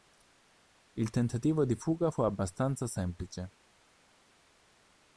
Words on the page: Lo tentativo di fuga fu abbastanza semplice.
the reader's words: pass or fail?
fail